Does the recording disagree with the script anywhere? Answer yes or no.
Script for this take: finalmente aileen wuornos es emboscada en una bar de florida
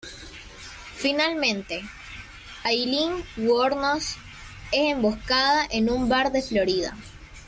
yes